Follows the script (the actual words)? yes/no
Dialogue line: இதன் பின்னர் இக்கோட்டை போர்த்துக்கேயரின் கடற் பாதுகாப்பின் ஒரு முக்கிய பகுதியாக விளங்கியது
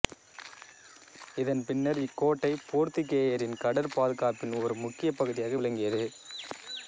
yes